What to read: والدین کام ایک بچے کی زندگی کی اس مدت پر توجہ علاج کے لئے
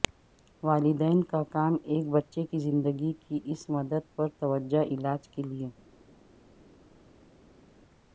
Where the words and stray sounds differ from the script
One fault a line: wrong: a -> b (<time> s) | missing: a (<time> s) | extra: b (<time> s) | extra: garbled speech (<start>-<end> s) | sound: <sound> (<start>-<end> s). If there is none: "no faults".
extra: کا (1.2 s)